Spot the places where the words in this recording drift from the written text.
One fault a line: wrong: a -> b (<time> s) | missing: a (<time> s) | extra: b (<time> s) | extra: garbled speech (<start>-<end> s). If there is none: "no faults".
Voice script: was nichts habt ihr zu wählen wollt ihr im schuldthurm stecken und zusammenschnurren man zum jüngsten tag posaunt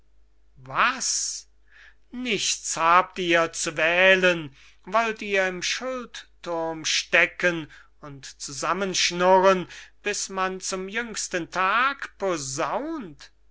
extra: bis (10.0 s)